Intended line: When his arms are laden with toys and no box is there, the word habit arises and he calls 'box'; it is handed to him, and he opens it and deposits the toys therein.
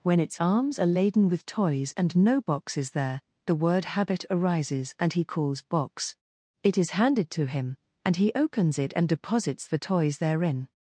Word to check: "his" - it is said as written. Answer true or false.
false